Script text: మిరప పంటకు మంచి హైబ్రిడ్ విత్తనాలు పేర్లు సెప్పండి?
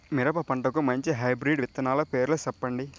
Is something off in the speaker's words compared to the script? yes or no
no